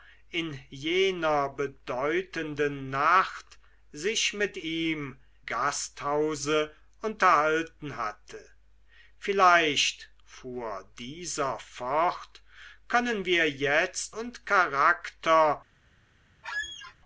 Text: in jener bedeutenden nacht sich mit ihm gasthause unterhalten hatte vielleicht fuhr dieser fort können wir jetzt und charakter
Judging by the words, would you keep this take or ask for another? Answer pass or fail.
pass